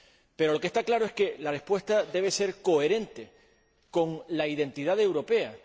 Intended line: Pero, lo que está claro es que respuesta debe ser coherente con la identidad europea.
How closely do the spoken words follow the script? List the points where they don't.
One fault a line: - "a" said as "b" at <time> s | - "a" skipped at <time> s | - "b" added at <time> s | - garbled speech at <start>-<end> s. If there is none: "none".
- "la" added at 1.4 s